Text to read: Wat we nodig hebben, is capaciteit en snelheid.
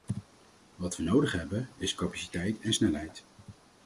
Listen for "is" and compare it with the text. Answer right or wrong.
right